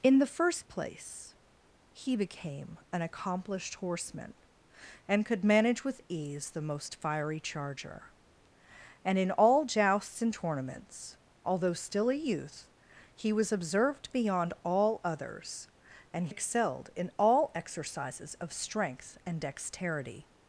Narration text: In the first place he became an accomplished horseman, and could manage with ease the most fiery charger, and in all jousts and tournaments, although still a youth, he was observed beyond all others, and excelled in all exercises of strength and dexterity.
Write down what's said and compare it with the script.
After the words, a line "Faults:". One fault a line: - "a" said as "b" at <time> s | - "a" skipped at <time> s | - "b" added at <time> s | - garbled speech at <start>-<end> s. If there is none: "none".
In the first place he became an accomplished horseman, and could manage with ease the most fiery charger, and in all jousts and tournaments, although still a youth, he was observed beyond all others, and excelled in all exercises of strength and dexterity.
Faults:
none